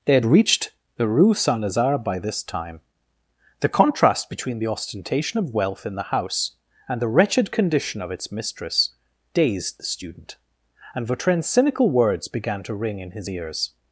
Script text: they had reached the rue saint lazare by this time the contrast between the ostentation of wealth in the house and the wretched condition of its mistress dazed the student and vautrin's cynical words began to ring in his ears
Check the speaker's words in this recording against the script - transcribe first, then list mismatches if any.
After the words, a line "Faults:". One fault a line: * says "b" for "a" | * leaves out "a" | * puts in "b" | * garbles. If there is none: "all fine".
they had reached the rue saint lazare by this time the contrast between the ostentation of wealth in the house and the wretched condition of its mistress dazed the student and vautrin's cynical words began to ring in his ears
Faults:
all fine